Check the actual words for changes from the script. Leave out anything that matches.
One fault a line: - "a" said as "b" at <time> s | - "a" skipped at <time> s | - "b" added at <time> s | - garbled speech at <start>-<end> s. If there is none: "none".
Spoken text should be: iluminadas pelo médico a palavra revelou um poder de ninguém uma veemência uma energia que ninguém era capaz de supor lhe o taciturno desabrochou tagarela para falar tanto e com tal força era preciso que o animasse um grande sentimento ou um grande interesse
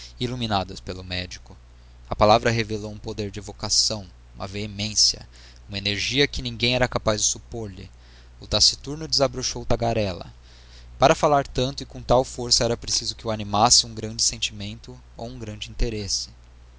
- "ninguém" said as "evocação" at 3.4 s